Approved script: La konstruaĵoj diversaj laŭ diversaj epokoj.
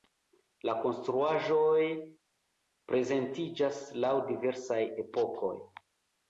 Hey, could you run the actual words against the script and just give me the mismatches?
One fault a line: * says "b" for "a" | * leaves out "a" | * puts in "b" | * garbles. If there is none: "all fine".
* says "prezentiĝas" for "diversaj"